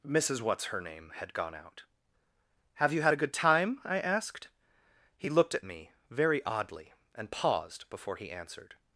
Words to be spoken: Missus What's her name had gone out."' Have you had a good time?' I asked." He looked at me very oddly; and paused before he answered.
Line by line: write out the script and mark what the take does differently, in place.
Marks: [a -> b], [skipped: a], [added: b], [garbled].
Missus What's her name had gone out."' Have you had a good time?' I asked." He looked at me very oddly; and paused before he answered.